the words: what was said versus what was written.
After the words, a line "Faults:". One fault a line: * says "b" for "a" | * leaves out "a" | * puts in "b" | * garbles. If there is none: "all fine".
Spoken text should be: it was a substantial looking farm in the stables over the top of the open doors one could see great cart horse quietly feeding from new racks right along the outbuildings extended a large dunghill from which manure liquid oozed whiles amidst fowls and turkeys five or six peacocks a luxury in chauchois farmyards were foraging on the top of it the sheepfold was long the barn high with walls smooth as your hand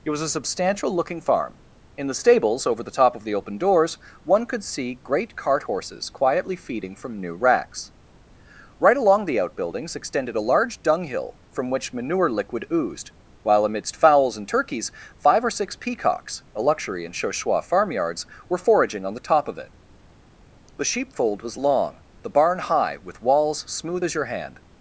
it was a substantial looking farm in the stables over the top of the open doors one could see great cart horses quietly feeding from new racks right along the outbuildings extended a large dunghill from which manure liquid oozed while amidst fowls and turkeys five or six peacocks a luxury in chauchois farmyards were foraging on the top of it the sheepfold was long the barn high with walls smooth as your hand
Faults:
* says "horses" for "horse"
* says "while" for "whiles"